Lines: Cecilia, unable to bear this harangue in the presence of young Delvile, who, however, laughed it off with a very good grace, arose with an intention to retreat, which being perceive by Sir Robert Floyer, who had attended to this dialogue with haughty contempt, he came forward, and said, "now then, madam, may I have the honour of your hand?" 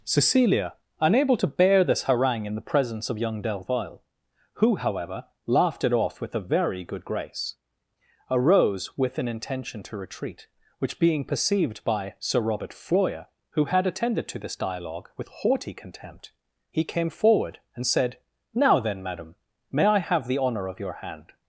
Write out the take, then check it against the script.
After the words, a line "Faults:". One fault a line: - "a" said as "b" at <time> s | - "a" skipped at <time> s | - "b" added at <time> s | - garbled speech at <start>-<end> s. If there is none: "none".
Cecilia, unable to bear this harangue in the presence of young Delvile, who, however, laughed it off with a very good grace, arose with an intention to retreat, which being perceived by Sir Robert Floyer, who had attended to this dialogue with haughty contempt, he came forward, and said, "now then, madam, may I have the honour of your hand?"
Faults:
- "perceive" said as "perceived" at 11.2 s